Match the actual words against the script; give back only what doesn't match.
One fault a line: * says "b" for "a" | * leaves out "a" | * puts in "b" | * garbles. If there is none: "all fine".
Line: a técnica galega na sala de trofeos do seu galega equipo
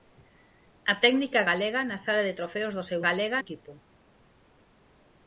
all fine